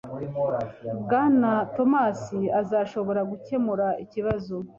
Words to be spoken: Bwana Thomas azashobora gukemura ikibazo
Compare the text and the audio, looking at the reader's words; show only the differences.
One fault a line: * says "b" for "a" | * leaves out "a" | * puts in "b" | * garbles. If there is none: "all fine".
all fine